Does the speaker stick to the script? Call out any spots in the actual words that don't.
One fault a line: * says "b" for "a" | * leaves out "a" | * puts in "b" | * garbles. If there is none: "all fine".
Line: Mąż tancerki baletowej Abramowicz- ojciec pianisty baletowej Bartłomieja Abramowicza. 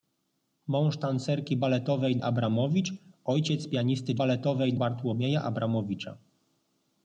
all fine